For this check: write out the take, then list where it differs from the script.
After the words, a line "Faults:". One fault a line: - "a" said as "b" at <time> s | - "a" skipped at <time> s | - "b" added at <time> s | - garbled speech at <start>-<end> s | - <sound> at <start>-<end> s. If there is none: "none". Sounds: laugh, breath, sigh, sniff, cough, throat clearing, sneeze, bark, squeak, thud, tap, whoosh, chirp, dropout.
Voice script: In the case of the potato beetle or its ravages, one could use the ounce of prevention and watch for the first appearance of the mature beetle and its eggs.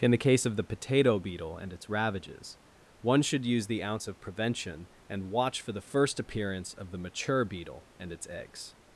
In the case of the potato beetle and its ravages, one should use the ounce of prevention and watch for the first appearance of the mature beetle and its eggs.
Faults:
- "or" said as "and" at 1.6 s
- "could" said as "should" at 3.2 s